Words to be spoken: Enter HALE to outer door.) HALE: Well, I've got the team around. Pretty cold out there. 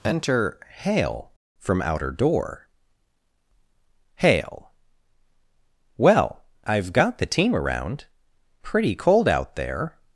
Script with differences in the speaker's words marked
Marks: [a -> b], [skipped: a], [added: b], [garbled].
Enter HALE [to -> from] outer door.) HALE: Well, I've got the team around. Pretty cold out there.